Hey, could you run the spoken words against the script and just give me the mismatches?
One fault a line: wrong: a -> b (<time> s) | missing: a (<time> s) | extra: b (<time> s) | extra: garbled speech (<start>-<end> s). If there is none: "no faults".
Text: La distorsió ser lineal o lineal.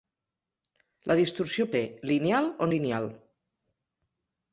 no faults